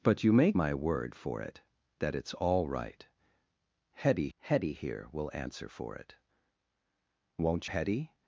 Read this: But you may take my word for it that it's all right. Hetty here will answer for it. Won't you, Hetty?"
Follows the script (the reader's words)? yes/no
no